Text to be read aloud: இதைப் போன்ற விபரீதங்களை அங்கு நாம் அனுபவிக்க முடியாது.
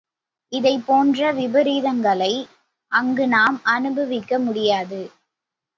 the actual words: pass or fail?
pass